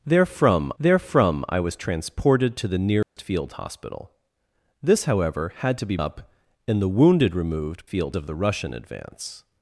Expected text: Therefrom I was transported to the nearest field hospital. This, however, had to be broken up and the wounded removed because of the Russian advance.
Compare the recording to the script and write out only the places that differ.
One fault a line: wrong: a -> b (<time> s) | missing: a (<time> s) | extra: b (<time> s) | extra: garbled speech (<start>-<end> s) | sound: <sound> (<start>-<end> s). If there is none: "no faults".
extra: therefrom (0.8 s)
sound: dropout (3.0-3.2 s)
missing: broken (6.0 s)
wrong: because -> field (7.9 s)